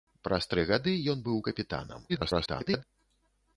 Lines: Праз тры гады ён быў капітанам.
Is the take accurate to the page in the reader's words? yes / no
no